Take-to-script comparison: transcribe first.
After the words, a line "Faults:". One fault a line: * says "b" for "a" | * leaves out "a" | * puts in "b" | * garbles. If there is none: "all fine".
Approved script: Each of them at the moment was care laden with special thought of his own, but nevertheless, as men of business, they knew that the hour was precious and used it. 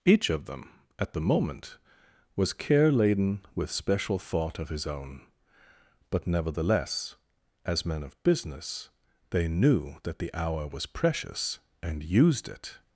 Each of them at the moment was care laden with special thought of his own, but nevertheless, as men of business, they knew that the hour was precious and used it.
Faults:
all fine